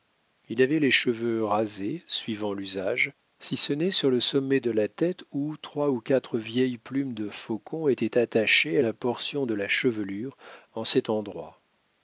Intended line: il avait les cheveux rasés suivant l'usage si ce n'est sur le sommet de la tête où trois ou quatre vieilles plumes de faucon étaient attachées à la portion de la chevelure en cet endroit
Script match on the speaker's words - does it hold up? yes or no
yes